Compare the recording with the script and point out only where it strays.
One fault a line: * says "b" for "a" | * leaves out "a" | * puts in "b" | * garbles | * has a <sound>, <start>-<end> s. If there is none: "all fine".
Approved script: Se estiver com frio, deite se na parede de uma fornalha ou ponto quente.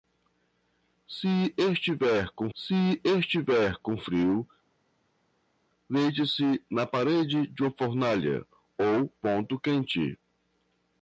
* puts in "se estiver com"